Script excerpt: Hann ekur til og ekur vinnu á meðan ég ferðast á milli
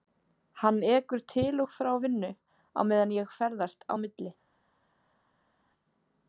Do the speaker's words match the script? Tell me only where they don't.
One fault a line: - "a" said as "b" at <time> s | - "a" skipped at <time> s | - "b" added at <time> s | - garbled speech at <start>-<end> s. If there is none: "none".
- "ekur" said as "frá" at 1.8 s